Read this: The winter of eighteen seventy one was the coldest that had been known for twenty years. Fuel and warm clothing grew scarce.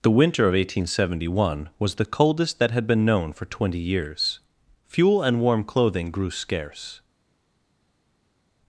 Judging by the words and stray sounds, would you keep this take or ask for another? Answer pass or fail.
pass